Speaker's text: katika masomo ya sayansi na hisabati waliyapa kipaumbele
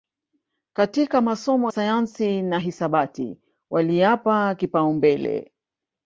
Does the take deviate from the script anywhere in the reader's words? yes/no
yes